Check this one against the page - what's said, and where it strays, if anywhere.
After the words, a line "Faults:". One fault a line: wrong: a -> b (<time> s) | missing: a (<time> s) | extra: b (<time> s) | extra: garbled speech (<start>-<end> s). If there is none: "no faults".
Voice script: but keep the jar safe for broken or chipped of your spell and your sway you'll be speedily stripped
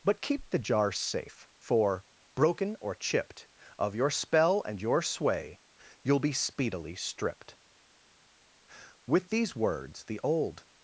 but keep the jar safe for broken or chipped of your spell and your sway you'll be speedily stripped with these words the old
Faults:
extra: with these words the old (9.1 s)